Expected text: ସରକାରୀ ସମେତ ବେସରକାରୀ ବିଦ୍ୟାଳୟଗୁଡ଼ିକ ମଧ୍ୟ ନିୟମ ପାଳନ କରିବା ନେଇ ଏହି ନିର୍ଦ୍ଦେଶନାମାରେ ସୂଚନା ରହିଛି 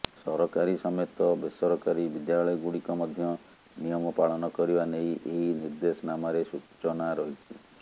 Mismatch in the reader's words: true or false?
false